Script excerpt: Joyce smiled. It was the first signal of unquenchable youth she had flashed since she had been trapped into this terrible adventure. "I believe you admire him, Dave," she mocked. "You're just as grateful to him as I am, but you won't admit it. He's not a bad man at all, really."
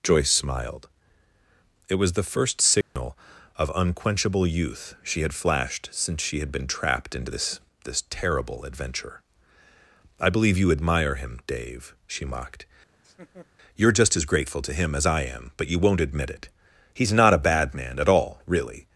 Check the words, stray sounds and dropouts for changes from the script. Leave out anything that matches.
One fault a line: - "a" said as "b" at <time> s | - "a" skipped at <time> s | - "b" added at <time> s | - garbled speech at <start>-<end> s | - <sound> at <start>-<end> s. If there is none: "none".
- dropout at 2.8-3.0 s
- "this" added at 7.8 s
- laugh at 12.9-13.5 s